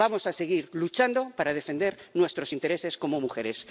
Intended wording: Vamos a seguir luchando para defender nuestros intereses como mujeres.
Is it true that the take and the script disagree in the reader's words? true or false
false